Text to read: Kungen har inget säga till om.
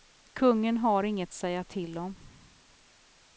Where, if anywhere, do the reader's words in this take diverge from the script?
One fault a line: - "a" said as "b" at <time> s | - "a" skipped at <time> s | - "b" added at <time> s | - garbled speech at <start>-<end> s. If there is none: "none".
none